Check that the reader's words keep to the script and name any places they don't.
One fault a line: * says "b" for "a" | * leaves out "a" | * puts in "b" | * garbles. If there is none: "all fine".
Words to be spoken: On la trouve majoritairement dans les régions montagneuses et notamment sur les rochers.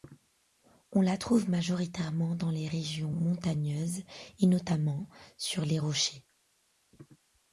all fine